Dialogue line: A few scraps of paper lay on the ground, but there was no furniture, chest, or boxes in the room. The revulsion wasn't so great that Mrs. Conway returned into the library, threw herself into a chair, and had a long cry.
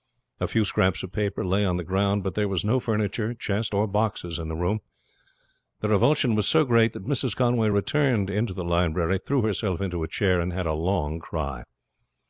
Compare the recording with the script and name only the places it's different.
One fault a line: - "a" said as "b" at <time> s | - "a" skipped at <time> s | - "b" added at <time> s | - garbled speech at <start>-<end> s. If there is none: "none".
- "wasn't" said as "was" at 6.3 s